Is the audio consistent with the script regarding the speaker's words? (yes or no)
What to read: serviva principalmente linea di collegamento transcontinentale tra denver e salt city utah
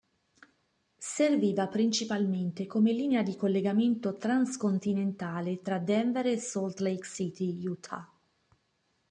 no